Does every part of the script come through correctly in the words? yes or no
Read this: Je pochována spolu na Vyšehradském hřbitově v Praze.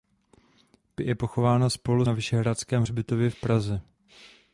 yes